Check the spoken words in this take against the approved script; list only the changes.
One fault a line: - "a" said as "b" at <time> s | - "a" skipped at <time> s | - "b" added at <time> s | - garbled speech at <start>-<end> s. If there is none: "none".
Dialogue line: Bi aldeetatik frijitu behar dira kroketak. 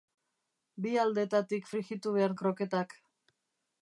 - "dira" skipped at 2.4 s